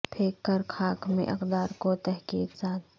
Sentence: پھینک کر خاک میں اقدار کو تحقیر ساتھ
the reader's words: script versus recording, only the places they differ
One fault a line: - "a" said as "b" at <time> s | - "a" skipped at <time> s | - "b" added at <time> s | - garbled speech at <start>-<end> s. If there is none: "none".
none